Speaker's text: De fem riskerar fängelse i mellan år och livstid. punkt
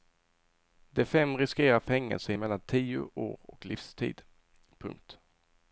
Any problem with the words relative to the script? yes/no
yes